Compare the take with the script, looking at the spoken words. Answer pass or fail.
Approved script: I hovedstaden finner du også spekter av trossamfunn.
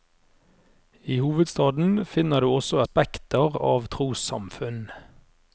pass